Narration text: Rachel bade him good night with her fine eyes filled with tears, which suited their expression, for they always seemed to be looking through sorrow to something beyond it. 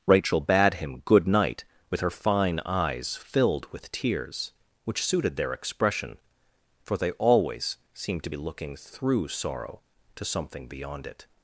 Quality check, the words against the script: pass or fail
pass